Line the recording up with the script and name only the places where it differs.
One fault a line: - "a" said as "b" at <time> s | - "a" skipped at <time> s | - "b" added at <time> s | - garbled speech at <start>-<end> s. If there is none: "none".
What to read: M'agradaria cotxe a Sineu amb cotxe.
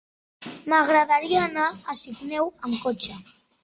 - "cotxe" said as "anar" at 1.5 s